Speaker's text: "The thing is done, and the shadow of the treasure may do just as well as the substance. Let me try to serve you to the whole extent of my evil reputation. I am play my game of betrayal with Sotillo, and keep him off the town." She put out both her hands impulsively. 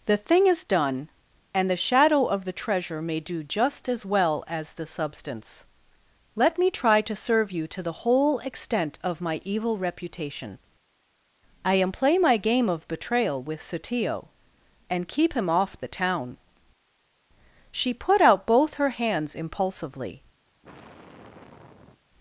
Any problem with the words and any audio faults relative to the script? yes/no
yes